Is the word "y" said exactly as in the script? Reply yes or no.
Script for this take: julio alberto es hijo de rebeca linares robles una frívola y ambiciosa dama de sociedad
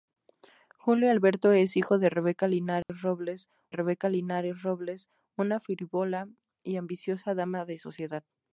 yes